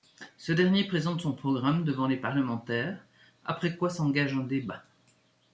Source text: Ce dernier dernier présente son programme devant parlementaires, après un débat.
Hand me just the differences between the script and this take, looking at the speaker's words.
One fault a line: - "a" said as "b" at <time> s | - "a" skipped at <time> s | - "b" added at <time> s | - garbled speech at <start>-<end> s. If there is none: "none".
- "dernier" skipped at 0.9 s
- "les" added at 2.1 s
- "quoi s'engage" added at 3.8 s